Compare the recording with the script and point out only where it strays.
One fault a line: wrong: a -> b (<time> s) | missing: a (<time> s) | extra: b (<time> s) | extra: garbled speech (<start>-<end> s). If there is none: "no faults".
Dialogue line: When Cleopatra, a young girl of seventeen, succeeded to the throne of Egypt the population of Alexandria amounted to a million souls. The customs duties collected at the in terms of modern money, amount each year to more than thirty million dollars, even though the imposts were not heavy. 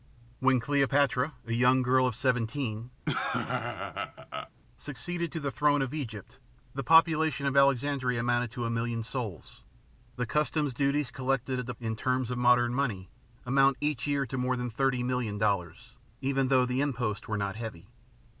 no faults